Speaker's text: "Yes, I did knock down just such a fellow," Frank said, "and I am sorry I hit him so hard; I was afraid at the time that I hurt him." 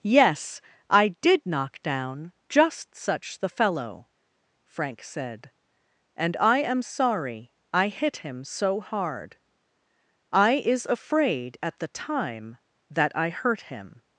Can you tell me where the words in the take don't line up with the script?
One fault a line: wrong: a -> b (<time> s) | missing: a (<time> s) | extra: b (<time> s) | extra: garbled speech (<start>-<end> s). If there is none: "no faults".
wrong: a -> the (3.4 s)
wrong: was -> is (10.5 s)